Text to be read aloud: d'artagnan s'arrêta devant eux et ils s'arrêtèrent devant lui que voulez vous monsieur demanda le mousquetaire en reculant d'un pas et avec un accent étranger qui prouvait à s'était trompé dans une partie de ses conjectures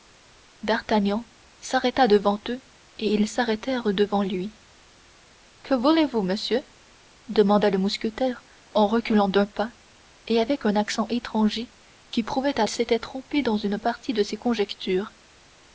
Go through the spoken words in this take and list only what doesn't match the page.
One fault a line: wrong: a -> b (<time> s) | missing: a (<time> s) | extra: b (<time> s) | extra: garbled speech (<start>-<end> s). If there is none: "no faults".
no faults